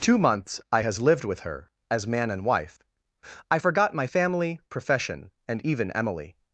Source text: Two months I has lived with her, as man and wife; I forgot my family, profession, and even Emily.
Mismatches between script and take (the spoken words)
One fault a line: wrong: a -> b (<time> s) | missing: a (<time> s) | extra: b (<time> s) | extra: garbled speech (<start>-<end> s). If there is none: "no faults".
no faults